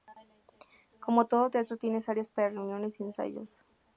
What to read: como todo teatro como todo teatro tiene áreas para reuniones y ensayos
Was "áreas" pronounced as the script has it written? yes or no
yes